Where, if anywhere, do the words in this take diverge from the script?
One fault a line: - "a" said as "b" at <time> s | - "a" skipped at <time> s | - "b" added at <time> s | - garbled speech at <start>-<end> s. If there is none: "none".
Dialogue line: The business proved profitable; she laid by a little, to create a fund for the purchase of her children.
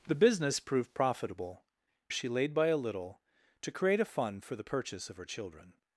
none